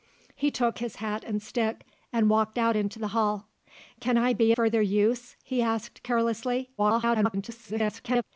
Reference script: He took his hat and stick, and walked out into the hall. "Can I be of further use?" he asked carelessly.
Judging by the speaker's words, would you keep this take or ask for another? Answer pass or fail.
fail